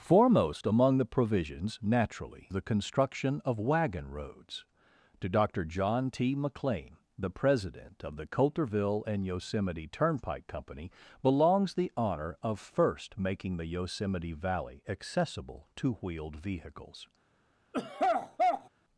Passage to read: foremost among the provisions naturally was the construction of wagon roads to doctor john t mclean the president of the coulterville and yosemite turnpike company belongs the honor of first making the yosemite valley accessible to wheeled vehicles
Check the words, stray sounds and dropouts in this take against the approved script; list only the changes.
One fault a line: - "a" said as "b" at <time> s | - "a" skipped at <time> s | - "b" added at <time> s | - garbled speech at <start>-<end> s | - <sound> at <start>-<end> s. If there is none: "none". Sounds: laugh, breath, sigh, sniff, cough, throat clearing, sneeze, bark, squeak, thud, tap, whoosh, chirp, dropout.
- "was" skipped at 2.5 s
- throat clearing at 17.7-18.7 s